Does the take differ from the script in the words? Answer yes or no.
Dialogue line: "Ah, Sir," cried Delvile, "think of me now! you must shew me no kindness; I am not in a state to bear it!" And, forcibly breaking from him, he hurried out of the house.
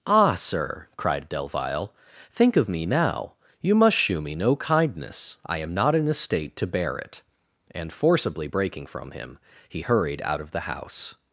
no